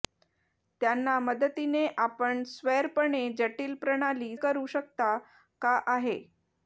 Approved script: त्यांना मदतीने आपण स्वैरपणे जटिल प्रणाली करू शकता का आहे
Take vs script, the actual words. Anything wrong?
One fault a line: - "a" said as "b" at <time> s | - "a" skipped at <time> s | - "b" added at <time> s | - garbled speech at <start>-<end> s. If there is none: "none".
none